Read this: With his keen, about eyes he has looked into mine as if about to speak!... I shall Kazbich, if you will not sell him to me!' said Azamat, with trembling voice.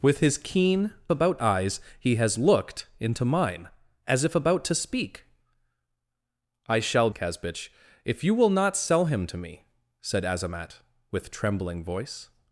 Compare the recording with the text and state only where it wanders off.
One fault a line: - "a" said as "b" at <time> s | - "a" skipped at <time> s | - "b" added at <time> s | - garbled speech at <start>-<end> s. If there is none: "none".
none